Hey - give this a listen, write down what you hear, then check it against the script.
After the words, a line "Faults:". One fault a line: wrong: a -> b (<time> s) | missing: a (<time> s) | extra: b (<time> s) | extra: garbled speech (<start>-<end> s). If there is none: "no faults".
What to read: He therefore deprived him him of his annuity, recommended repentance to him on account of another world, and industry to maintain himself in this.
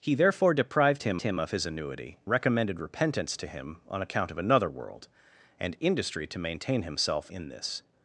He therefore deprived him him of his annuity, recommended repentance to him on account of another world, and industry to maintain himself in this.
Faults:
no faults